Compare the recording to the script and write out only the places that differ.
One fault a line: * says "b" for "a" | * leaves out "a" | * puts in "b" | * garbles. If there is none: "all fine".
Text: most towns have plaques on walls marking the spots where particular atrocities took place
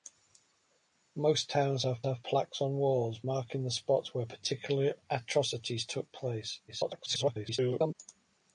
* puts in "have"
* garbles